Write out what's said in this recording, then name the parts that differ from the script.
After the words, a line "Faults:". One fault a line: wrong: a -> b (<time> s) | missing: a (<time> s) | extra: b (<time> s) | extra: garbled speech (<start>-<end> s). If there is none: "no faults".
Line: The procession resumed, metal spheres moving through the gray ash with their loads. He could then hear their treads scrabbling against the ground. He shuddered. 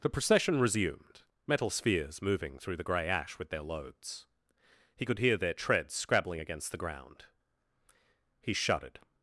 The procession resumed, metal spheres moving through the gray ash with their loads. He could hear their treads scrabbling against the ground. He shuddered.
Faults:
missing: then (5.2 s)